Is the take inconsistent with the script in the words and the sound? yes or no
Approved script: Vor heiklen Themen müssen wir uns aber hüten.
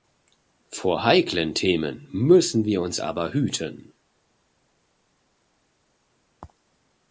no